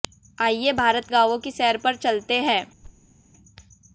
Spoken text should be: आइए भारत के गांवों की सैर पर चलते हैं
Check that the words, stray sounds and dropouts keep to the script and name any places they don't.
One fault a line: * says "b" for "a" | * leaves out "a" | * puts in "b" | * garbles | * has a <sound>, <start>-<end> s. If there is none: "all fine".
* leaves out "के"
* has a thud, 2.8-3.1 s